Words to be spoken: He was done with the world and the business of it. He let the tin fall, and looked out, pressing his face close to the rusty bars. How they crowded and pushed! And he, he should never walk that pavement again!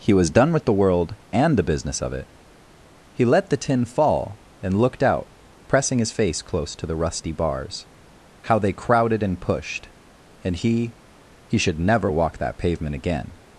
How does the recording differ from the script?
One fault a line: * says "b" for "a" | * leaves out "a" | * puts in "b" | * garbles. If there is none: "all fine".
all fine